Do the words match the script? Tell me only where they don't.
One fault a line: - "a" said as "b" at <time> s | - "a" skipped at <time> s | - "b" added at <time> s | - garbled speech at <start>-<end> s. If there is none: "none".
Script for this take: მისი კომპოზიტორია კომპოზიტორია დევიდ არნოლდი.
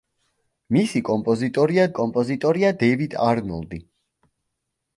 none